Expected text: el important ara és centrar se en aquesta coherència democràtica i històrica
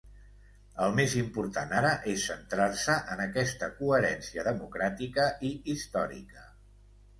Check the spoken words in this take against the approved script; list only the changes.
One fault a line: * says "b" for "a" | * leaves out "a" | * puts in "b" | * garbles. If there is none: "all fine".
* puts in "més"